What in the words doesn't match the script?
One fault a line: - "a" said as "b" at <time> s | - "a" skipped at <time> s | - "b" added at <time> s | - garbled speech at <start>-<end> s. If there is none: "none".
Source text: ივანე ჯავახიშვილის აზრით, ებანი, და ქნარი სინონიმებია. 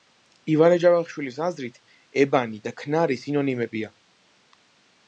none